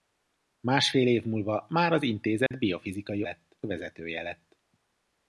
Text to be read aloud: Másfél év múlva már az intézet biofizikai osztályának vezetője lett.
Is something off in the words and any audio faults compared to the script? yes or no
yes